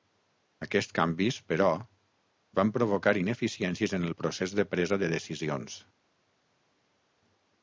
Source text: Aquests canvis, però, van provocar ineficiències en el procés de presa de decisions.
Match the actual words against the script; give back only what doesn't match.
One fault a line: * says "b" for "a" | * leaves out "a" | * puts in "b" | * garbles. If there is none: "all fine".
all fine